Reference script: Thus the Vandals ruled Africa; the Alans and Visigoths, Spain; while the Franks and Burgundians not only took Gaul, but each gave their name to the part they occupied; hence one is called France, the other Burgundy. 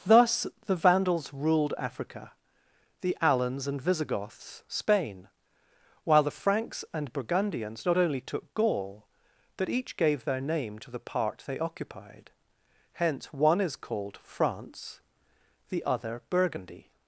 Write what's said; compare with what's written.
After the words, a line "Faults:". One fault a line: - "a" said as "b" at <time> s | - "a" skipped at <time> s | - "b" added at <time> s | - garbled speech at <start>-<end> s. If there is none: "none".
Thus the Vandals ruled Africa; the Alans and Visigoths, Spain; while the Franks and Burgundians not only took Gaul, but each gave their name to the part they occupied; hence one is called France, the other Burgundy.
Faults:
none